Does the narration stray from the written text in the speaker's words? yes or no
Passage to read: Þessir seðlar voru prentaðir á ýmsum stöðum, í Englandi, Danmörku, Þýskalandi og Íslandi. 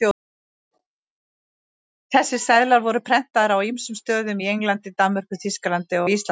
no